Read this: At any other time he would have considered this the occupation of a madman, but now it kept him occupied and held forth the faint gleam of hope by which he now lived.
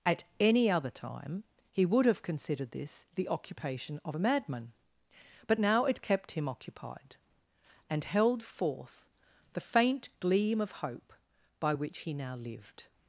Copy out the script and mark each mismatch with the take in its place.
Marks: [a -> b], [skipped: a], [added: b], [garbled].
At any other time he would have considered this the occupation of a madman, but now it kept him occupied and held forth the faint gleam of hope by which he now lived.